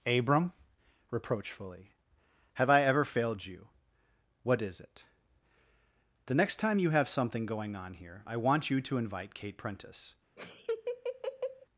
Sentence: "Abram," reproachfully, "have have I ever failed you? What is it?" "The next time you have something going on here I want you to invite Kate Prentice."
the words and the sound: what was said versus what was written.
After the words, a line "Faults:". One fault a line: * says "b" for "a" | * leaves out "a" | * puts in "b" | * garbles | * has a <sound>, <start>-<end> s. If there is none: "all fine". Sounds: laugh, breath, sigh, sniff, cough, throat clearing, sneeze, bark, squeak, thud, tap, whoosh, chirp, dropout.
"Abram," reproachfully, "have I ever failed you? What is it?" "The next time you have something going on here I want you to invite Kate Prentice."
Faults:
* leaves out "have"
* has a laugh, 10.4-11.7 s